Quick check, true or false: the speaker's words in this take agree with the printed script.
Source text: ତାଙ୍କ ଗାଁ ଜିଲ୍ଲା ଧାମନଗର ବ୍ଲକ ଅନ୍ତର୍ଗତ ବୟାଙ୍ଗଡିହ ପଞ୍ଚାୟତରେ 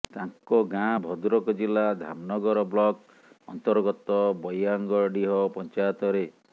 false